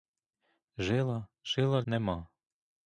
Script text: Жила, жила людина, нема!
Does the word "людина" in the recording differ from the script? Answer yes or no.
yes